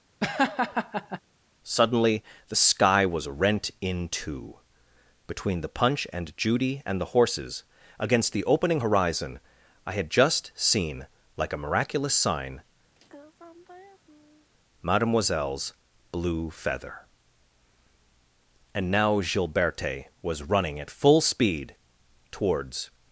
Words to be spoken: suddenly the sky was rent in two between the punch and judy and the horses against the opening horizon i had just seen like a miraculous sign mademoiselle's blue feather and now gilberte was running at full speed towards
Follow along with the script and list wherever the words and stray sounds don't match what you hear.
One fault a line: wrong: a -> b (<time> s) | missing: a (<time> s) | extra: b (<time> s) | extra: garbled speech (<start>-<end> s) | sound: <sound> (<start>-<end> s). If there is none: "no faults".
sound: laugh (0.2-1.2 s)
sound: sigh (12.9-14.5 s)